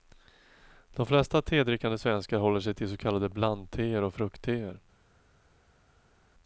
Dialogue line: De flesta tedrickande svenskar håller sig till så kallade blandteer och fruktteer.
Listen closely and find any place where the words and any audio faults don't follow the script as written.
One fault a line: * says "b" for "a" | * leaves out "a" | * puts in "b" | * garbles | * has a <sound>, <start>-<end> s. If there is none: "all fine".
all fine